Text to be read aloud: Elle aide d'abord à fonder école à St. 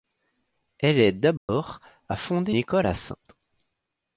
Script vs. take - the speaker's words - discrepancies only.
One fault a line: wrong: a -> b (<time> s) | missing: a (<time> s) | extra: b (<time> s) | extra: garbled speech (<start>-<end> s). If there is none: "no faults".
no faults